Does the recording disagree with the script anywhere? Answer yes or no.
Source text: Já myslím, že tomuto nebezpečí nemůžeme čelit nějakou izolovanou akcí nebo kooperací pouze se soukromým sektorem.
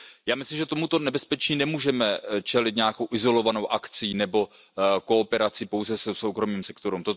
no